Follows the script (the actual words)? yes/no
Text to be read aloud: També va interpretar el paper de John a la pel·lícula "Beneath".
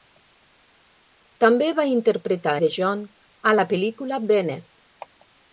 no